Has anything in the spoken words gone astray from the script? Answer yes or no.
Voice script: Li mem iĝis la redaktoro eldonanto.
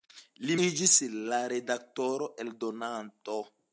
yes